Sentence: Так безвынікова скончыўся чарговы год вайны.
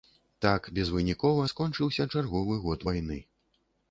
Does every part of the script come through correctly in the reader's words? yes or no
yes